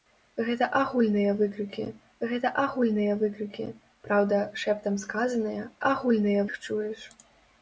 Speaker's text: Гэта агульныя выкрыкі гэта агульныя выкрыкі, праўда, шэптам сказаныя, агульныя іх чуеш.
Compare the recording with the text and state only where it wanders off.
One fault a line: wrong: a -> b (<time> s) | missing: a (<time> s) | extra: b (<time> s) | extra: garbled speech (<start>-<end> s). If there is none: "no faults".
no faults